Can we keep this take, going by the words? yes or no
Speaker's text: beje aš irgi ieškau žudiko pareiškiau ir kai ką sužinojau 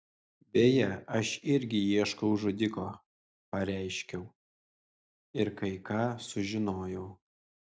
yes